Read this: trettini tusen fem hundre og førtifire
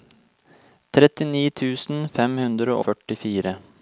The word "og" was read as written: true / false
false